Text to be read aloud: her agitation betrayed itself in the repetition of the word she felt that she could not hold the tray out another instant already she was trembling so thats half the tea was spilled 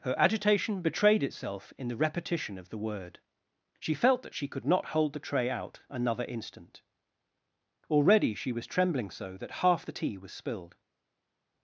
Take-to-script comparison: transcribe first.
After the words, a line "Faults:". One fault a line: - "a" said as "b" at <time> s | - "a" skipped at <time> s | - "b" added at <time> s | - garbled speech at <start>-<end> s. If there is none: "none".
her agitation betrayed itself in the repetition of the word she felt that she could not hold the tray out another instant already she was trembling so that half the tea was spilled
Faults:
- "thats" said as "that" at 9.4 s